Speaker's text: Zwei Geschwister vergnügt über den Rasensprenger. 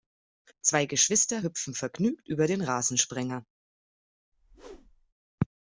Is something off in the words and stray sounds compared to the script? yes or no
yes